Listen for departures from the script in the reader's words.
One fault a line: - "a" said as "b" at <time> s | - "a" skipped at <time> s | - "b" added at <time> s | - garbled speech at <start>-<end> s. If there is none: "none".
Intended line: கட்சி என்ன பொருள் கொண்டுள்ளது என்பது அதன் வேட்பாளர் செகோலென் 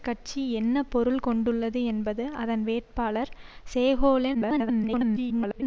- garbled speech at 4.3-5.6 s